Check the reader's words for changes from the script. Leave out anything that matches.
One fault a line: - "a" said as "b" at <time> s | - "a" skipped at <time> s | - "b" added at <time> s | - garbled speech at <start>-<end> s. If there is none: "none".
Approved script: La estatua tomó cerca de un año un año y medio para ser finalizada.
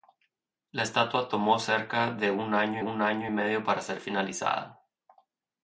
none